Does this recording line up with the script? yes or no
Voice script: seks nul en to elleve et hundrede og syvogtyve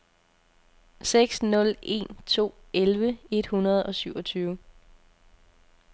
yes